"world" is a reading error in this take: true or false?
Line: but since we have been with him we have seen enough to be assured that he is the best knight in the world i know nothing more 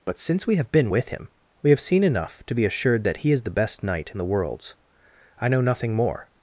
true